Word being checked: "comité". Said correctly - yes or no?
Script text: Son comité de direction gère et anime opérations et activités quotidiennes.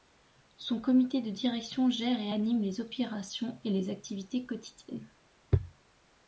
yes